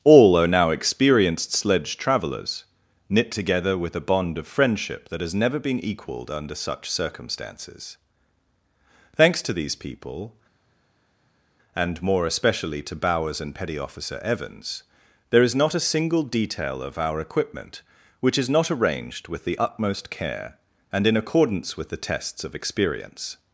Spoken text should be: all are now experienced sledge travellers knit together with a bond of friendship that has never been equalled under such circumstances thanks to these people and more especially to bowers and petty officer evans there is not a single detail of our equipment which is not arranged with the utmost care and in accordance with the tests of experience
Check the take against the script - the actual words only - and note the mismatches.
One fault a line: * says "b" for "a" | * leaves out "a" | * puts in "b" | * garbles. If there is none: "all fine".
all fine